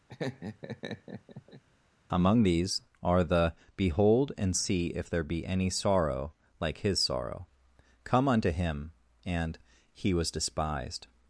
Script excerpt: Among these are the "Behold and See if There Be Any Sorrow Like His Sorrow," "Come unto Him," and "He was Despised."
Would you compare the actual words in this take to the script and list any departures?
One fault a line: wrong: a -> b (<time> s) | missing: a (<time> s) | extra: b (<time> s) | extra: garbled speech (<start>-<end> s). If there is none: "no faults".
no faults